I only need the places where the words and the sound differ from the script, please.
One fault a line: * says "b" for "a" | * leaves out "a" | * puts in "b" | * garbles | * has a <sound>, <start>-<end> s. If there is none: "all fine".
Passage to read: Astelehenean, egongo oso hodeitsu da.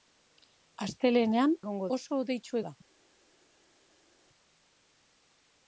all fine